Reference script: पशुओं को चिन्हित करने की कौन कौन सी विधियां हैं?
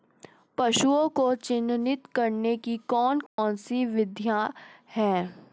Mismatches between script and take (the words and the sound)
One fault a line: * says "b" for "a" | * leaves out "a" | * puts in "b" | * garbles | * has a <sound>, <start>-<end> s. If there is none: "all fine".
* has a dropout, 3.3-3.4 s